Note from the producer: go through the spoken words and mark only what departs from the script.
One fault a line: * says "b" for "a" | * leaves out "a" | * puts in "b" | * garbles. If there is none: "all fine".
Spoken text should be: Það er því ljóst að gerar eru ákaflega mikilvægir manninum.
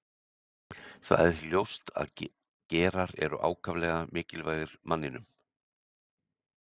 all fine